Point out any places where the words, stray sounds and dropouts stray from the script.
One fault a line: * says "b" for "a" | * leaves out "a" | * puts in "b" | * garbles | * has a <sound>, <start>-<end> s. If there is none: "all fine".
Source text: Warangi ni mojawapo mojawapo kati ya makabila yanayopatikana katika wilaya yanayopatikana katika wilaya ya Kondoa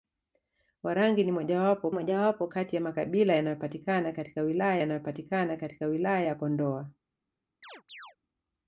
* has a chirp, 7.6-8.2 s